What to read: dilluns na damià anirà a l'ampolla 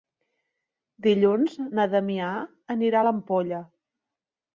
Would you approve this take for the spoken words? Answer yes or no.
yes